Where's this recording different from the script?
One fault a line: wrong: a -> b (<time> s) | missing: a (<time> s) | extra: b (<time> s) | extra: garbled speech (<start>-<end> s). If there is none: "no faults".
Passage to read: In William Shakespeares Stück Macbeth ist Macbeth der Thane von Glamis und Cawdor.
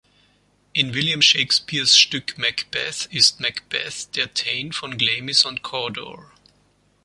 no faults